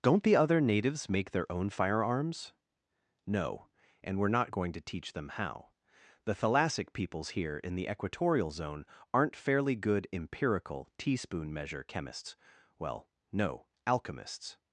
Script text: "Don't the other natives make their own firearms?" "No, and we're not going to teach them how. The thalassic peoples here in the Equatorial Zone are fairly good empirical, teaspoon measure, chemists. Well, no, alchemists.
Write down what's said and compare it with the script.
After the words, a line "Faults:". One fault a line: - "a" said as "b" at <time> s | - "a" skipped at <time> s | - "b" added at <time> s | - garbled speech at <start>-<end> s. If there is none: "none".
"Don't the other natives make their own firearms?" "No, and we're not going to teach them how. The thalassic peoples here in the Equatorial Zone aren't fairly good empirical, teaspoon measure, chemists. Well, no, alchemists.
Faults:
- "are" said as "aren't" at 9.1 s